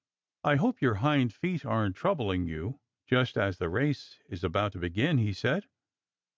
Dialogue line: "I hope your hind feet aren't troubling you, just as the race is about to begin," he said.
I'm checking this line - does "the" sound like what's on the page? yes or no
yes